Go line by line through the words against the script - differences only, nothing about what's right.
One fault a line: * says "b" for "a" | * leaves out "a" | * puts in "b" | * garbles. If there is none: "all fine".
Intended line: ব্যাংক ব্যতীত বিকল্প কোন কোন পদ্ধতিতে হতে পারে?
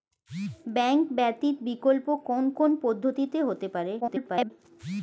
* garbles